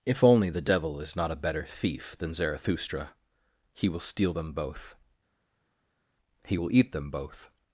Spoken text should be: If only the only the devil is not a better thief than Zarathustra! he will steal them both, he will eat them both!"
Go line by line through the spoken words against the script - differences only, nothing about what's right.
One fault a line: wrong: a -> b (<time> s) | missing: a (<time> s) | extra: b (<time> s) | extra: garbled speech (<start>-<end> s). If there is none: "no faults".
missing: only the (0.6 s)